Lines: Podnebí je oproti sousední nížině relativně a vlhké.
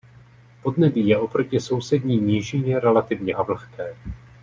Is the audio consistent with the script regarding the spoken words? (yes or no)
yes